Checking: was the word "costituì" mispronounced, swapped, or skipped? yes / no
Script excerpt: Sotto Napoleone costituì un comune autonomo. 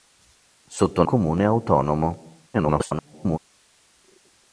yes